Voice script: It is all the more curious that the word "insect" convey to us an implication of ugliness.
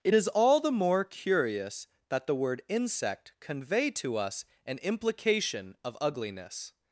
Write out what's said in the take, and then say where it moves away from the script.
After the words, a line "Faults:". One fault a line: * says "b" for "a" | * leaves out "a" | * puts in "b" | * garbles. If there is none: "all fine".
It is all the more curious that the word "insect" convey to us an implication of ugliness.
Faults:
all fine